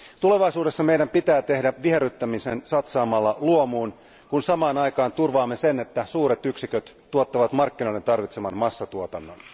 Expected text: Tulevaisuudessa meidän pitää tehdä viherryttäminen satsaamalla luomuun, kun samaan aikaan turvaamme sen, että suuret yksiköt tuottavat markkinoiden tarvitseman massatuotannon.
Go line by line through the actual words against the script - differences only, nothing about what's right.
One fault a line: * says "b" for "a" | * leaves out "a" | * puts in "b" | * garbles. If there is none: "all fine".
all fine